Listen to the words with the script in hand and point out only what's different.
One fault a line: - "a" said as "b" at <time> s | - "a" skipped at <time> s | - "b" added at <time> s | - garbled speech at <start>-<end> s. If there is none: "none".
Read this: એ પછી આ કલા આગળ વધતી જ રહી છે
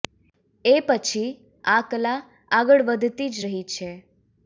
none